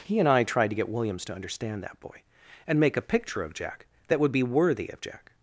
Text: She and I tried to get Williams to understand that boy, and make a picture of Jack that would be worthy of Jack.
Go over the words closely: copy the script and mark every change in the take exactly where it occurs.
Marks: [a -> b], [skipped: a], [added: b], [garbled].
[She -> He] and I tried to get Williams to understand that boy, and make a picture of Jack that would be worthy of Jack.